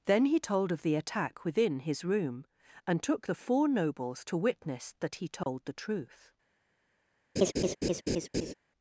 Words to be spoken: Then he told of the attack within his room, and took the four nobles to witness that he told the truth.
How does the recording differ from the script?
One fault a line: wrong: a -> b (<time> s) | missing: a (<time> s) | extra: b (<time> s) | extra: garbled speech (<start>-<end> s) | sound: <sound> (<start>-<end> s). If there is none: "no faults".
sound: dropout (5.4-5.5 s)
sound: laugh (7.4-8.5 s)